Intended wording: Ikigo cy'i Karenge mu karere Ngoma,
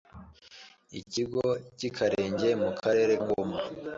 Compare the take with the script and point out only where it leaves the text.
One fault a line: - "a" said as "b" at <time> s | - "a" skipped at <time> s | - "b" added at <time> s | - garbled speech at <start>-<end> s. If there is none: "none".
none